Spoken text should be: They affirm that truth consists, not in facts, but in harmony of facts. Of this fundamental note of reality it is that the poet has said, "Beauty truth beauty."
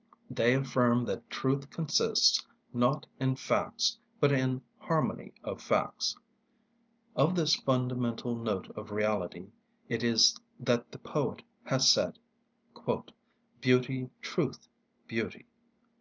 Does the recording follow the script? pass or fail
pass